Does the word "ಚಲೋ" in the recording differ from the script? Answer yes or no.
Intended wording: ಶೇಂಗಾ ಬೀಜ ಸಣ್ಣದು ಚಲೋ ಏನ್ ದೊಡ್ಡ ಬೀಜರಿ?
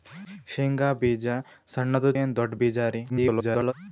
yes